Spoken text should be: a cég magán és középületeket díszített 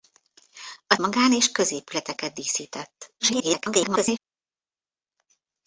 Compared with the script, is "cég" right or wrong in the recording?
wrong